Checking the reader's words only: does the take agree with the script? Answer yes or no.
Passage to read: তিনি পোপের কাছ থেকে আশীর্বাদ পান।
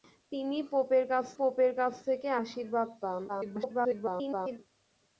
no